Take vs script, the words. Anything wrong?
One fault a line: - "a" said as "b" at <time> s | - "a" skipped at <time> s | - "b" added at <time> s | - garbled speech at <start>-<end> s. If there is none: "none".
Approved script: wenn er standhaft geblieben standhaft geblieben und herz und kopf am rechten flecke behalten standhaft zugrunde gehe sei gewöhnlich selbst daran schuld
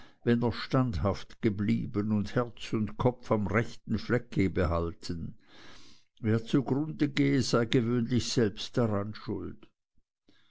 - "standhaft geblieben" skipped at 2.1 s
- "standhaft" said as "wer" at 6.2 s